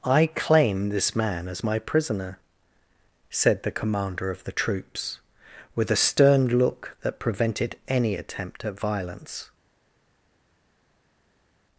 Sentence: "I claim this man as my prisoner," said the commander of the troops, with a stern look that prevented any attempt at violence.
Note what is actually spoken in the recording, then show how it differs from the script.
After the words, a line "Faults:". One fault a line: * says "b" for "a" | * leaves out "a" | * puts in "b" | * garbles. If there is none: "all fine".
"I claim this man as my prisoner," said the commander of the troops, with a stern look that prevented any attempt at violence.
Faults:
all fine